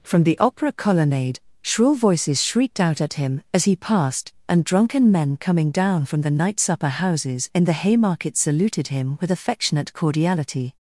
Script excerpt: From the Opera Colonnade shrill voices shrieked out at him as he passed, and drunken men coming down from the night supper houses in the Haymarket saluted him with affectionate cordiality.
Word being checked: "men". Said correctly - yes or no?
yes